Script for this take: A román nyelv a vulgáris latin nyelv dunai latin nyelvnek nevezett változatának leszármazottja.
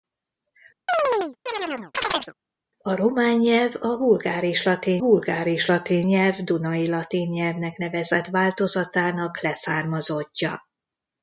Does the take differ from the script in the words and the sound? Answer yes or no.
yes